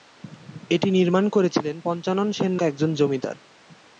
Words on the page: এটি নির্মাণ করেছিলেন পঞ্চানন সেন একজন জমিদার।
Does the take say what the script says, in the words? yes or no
yes